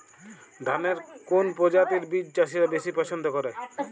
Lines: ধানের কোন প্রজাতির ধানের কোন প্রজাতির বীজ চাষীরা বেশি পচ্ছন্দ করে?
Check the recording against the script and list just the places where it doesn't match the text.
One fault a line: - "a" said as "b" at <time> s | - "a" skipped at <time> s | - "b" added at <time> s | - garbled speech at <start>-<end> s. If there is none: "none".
- "ধানের কোন প্রজাতির" skipped at 2.0 s